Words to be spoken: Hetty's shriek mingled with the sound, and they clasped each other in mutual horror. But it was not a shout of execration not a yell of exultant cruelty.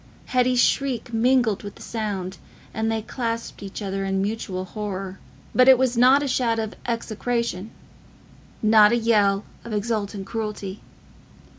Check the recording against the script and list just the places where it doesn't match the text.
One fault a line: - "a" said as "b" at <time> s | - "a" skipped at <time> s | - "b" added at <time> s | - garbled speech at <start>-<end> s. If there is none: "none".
none